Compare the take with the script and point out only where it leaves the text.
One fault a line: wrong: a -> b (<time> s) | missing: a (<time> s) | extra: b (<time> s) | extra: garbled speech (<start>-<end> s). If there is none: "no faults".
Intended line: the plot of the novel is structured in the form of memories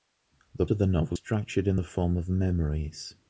missing: plot (0.7 s)
missing: is (1.2 s)